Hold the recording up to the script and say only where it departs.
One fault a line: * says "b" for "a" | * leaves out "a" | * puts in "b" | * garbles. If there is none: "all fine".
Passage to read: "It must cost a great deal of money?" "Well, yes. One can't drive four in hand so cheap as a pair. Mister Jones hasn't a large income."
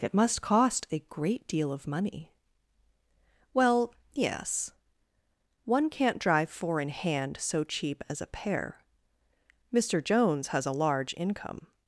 * says "has" for "hasn't"